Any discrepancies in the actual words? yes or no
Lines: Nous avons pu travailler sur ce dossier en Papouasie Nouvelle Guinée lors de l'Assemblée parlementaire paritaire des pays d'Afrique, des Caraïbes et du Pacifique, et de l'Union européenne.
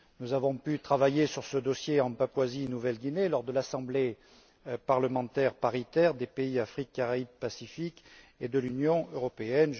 no